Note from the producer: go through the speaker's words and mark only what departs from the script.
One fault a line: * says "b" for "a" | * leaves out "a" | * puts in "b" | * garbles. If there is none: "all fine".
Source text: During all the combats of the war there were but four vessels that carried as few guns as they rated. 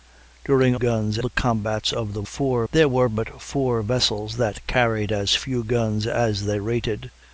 * says "guns" for "all"
* says "four" for "war"